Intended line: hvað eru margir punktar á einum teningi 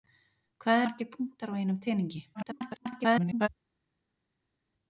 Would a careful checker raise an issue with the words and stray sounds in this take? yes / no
yes